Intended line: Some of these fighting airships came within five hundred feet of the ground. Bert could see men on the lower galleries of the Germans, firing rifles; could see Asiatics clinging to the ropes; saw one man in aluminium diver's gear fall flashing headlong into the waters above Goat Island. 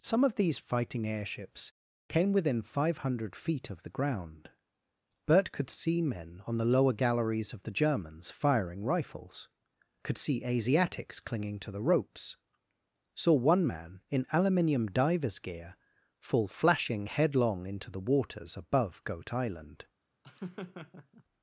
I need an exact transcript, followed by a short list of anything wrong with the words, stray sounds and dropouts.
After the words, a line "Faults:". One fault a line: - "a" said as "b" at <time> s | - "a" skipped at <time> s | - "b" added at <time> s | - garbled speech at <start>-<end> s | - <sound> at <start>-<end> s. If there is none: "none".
Some of these fighting airships came within five hundred feet of the ground. Bert could see men on the lower galleries of the Germans, firing rifles; could see Asiatics clinging to the ropes; saw one man in aluminium diver's gear fall flashing headlong into the waters above Goat Island.
Faults:
- laugh at 20.2-21.2 s